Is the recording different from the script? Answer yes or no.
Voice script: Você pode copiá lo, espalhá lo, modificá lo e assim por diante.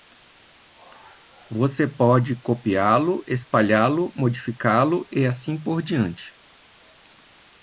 no